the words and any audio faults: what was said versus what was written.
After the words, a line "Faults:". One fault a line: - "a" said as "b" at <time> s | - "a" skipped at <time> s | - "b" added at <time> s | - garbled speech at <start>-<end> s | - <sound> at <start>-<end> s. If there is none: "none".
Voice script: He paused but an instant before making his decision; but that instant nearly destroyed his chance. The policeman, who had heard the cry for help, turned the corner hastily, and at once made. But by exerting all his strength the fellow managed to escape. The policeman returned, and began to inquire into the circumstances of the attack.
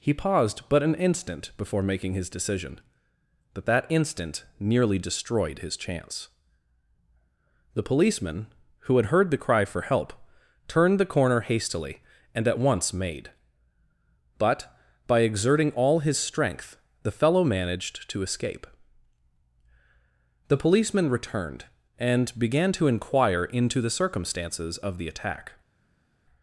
He paused but an instant before making his decision; but that instant nearly destroyed his chance. The policeman, who had heard the cry for help, turned the corner hastily, and at once made. But by exerting all his strength the fellow managed to escape. The policeman returned, and began to inquire into the circumstances of the attack.
Faults:
none